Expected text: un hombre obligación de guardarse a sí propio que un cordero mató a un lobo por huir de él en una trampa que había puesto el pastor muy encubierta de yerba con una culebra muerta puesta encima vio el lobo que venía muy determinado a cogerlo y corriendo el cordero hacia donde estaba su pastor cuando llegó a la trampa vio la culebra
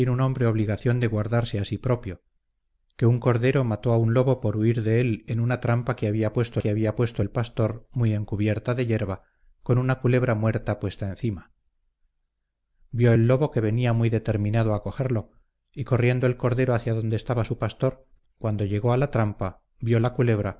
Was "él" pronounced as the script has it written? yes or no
yes